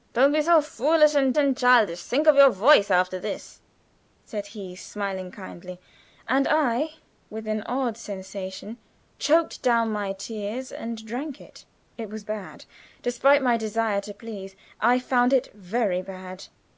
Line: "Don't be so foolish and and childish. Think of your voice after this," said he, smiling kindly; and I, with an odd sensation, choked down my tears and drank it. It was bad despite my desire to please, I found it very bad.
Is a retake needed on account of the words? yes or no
no